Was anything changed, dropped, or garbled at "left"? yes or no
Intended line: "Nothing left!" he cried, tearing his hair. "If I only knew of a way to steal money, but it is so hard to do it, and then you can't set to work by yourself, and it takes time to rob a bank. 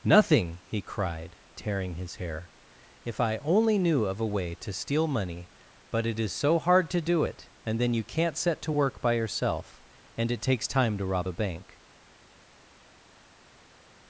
yes